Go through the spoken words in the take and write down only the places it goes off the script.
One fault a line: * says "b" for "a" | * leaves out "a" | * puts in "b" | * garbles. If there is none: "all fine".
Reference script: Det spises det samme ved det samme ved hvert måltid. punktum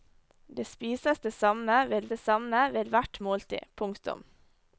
all fine